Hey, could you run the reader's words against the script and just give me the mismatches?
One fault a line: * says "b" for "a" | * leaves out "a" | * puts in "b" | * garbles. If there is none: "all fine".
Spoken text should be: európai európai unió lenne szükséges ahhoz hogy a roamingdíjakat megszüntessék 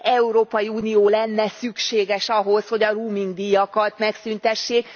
* leaves out "európai"